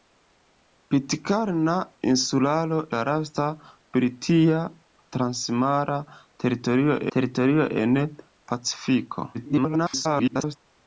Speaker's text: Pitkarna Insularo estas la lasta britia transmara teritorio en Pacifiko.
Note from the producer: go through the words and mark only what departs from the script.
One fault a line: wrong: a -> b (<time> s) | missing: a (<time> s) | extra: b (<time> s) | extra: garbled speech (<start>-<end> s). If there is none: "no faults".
missing: estas (2.8 s)
extra: teritorio (7.2 s)
extra: garbled speech (9.3-10.6 s)